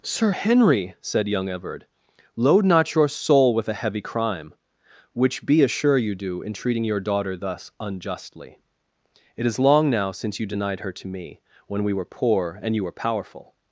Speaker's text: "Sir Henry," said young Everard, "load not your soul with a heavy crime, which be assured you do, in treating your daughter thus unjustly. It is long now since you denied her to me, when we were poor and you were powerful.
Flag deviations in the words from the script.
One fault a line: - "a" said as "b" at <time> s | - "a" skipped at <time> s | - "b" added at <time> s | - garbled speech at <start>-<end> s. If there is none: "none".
- "assured" said as "assure" at 5.6 s